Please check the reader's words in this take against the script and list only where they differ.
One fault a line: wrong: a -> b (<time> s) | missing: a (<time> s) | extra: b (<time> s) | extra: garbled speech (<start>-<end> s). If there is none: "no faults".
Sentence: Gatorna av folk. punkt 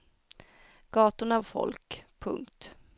no faults